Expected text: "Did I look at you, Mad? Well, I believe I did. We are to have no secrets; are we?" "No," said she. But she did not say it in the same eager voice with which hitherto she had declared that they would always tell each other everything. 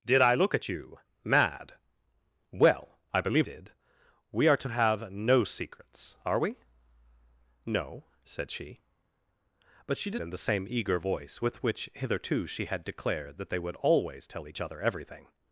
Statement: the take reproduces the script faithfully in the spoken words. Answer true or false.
false